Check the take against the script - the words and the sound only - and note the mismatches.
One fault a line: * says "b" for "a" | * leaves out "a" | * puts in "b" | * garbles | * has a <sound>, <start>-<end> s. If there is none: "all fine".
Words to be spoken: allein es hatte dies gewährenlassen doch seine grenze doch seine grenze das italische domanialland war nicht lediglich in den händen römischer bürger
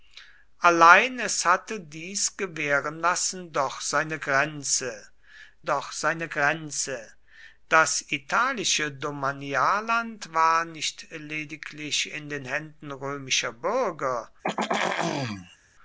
* has a throat clearing, 14.4-15.6 s